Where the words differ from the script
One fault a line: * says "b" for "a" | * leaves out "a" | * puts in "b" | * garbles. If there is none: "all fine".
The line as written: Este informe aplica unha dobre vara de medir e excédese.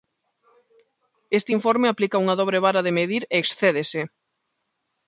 all fine